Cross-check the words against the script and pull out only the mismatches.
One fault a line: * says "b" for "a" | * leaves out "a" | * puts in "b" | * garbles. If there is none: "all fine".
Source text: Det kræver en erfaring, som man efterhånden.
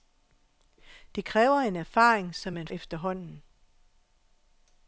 all fine